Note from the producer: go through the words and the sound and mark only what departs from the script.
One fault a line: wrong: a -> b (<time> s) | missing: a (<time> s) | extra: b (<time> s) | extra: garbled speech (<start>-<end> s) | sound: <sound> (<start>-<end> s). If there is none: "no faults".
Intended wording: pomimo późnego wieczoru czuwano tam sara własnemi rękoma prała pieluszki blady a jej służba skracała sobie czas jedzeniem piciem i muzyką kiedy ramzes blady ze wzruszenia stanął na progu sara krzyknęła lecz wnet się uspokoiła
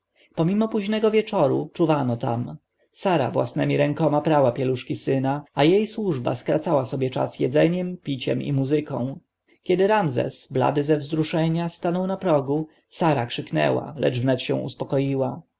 wrong: blady -> syna (5.0 s)